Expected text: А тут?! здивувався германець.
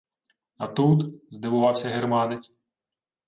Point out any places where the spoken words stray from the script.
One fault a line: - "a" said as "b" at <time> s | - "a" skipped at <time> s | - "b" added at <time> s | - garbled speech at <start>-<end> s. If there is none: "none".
none